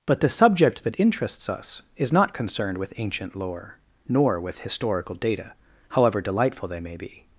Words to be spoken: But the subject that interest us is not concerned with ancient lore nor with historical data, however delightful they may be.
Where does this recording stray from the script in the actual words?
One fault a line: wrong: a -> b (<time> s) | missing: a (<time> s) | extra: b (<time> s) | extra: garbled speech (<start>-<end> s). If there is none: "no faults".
wrong: interest -> interests (1.0 s)